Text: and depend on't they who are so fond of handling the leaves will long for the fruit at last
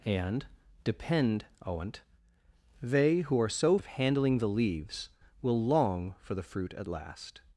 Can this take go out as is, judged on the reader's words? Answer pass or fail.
fail